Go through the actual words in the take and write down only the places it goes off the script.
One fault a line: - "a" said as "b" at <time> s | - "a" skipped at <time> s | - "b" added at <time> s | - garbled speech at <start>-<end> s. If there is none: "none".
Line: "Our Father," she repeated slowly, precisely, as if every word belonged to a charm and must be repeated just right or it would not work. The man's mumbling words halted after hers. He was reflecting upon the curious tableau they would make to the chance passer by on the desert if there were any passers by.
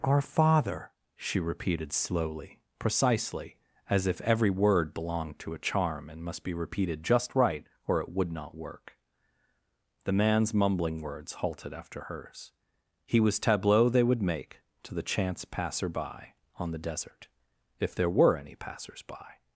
- "reflecting upon the curious" skipped at 13.4 s